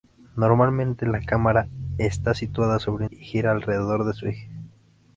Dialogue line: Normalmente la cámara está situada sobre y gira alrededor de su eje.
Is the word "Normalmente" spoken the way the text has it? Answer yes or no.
yes